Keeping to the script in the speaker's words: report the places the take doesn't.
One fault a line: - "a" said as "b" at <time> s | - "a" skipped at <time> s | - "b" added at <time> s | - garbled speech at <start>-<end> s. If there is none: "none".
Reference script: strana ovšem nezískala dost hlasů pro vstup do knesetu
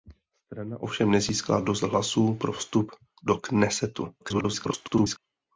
- garbled speech at 4.2-5.2 s